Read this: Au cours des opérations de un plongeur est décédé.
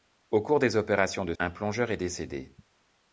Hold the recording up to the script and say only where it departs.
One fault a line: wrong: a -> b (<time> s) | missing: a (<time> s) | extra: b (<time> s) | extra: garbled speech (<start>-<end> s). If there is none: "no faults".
no faults